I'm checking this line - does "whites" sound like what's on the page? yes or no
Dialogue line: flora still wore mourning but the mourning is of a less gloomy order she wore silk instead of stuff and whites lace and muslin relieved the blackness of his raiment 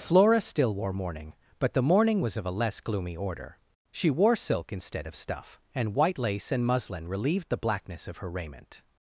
no